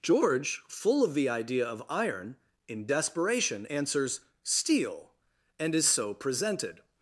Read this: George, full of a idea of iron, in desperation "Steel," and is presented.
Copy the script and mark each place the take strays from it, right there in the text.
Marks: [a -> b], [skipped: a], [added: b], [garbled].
George, full of [a -> the] idea of iron, in desperation [added: answers] "Steel," and is [added: so] presented.